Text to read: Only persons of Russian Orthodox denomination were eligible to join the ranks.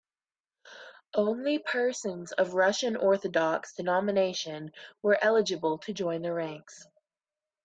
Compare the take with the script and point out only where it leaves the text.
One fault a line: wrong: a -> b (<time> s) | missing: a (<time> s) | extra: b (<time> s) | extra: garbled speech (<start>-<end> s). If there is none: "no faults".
no faults